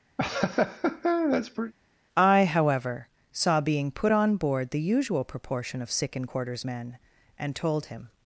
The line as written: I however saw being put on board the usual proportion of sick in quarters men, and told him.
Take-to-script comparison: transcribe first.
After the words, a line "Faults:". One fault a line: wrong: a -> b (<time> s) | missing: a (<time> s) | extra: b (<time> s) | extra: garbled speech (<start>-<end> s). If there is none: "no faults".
I however saw being put on board the usual proportion of sick in quarters men, and told him.
Faults:
no faults